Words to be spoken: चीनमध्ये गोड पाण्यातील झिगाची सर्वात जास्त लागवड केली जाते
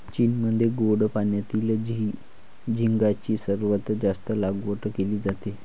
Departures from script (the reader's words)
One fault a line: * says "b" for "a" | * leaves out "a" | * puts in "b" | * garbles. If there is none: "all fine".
all fine